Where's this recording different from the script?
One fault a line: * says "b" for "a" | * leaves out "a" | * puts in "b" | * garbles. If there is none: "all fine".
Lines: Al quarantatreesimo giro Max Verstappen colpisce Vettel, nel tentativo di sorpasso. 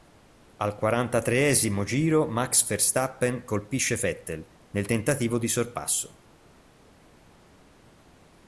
all fine